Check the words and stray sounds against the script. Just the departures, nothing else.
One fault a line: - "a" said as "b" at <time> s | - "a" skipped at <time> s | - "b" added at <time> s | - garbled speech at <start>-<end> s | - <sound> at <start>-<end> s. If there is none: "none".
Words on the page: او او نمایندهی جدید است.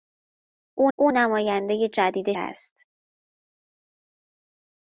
none